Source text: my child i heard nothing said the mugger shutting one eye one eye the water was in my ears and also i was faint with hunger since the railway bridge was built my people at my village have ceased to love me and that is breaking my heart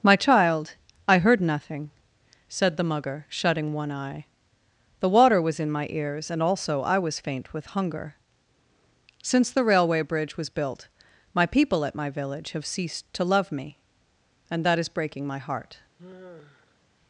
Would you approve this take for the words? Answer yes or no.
no